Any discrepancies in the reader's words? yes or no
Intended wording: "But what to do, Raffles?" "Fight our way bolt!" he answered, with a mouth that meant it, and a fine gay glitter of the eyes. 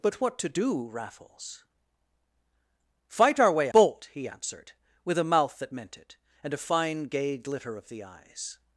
no